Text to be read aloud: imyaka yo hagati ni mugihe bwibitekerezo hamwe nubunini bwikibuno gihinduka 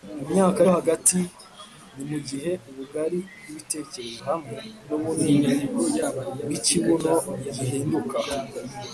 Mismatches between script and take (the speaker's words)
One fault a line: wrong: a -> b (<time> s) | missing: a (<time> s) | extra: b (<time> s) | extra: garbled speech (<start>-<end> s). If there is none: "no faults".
extra: ubugari (2.7 s)